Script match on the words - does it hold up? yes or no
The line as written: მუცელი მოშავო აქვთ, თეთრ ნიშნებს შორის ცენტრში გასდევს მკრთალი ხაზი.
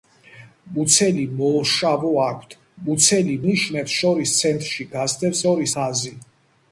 no